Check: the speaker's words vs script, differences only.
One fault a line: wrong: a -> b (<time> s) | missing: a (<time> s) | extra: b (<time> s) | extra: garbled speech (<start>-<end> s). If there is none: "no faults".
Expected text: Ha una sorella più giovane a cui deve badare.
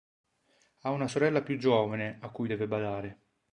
no faults